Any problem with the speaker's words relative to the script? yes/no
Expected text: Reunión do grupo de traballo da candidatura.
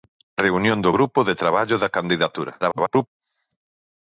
yes